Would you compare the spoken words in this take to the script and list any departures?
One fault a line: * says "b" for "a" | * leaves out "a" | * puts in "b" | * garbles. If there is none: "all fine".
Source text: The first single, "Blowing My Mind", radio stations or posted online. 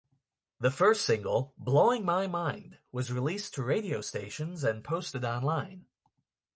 * puts in "was released to"
* says "and" for "or"